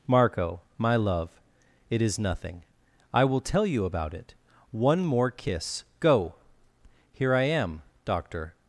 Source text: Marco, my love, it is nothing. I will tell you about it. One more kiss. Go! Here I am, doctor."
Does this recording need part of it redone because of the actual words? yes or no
no